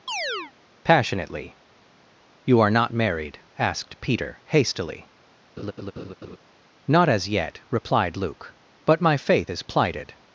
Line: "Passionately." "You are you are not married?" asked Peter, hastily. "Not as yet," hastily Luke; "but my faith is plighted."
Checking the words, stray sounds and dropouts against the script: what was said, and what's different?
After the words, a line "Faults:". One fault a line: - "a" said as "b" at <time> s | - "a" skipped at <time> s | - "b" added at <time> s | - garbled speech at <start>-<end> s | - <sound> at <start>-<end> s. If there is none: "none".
"Passionately." "You are not married?" asked Peter, hastily. "Not as yet," replied Luke; "but my faith is plighted."
Faults:
- chirp at 0.1-0.5 s
- "you are" skipped at 2.7 s
- laugh at 5.6-6.4 s
- "hastily" said as "replied" at 7.7 s